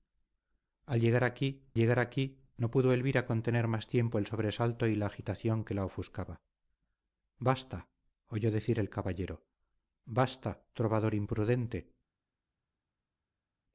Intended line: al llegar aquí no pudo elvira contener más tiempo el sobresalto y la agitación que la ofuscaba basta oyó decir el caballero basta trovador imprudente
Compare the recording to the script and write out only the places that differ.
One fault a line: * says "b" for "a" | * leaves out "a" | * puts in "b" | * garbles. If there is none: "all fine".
* puts in "llegar aquí"